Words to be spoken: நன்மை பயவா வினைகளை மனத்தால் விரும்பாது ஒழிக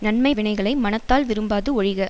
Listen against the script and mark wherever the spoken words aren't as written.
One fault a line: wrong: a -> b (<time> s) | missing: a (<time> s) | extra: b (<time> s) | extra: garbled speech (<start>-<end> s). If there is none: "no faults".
missing: பயவா (0.3 s)